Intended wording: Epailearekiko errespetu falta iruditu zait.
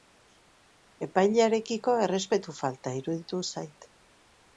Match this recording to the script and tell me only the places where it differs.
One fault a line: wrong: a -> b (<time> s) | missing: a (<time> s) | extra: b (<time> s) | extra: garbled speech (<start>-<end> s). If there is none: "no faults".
no faults